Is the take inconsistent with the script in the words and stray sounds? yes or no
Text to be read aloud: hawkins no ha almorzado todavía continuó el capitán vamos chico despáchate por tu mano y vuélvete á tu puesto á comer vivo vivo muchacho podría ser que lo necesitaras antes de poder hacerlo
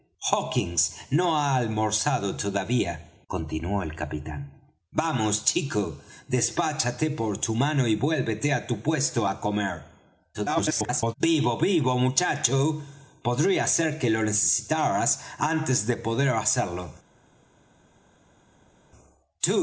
yes